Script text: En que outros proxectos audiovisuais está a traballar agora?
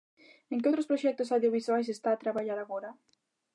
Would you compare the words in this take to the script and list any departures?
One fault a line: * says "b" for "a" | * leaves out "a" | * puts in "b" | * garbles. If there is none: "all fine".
all fine